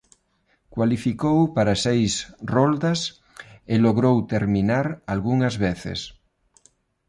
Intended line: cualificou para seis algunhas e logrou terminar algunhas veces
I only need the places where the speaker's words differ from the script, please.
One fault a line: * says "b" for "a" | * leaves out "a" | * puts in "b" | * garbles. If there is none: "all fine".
* says "roldas" for "algunhas"